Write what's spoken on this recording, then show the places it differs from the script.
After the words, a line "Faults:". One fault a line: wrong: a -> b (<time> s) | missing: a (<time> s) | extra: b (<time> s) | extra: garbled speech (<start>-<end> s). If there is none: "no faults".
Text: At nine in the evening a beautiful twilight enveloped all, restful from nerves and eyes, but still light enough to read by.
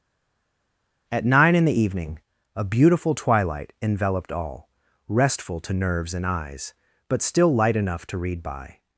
At nine in the evening a beautiful twilight enveloped all, restful to nerves and eyes, but still light enough to read by.
Faults:
wrong: from -> to (5.6 s)